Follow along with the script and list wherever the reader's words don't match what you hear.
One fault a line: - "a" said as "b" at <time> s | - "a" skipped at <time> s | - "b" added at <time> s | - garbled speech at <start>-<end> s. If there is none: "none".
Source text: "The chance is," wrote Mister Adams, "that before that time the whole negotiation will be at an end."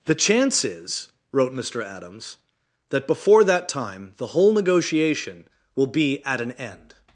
none